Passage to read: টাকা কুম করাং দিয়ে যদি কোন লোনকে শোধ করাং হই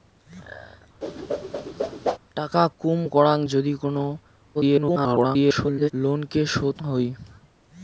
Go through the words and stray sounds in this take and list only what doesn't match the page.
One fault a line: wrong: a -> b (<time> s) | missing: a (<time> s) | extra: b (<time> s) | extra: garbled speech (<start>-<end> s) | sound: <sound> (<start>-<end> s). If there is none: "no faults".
sound: whoosh (1.0-2.2 s)
missing: দিয়ে (3.4 s)
extra: garbled speech (4.5-5.9 s)
missing: করাং (6.8 s)